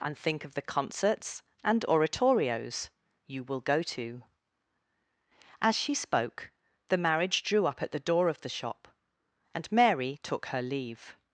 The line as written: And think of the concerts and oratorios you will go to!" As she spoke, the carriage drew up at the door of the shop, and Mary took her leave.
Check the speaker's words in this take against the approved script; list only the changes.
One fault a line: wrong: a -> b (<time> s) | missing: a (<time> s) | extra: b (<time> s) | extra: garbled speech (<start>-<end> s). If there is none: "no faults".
wrong: carriage -> marriage (7.0 s)